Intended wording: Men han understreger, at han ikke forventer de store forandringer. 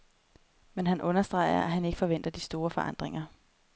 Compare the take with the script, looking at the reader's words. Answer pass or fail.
pass